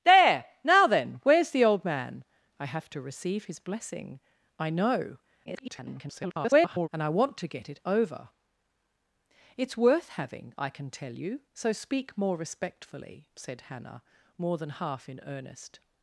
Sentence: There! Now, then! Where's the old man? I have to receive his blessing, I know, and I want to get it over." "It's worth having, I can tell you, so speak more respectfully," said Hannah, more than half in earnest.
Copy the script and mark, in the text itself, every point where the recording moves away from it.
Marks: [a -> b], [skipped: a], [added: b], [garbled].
There! Now, then! Where's the old man? I have to receive his blessing, I know, [garbled] and I want to get it over." "It's worth having, I can tell you, so speak more respectfully," said Hannah, more than half in earnest.